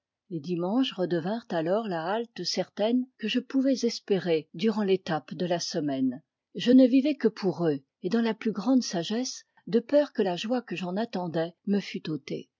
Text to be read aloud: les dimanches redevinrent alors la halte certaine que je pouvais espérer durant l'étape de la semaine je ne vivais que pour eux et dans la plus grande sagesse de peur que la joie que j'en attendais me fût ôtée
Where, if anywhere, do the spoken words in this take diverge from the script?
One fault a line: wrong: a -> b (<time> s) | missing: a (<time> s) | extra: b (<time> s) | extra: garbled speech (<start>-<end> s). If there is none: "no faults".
no faults